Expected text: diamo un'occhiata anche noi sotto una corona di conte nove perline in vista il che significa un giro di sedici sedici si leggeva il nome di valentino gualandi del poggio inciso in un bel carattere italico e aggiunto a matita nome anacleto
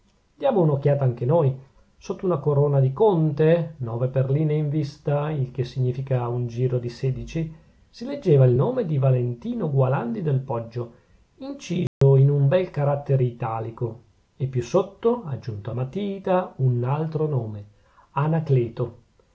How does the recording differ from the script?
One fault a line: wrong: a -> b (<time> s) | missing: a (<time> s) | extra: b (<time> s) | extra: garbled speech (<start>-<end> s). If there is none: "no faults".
missing: sedici (7.5 s)
extra: più sotto (14.5 s)
extra: un altro (16.6 s)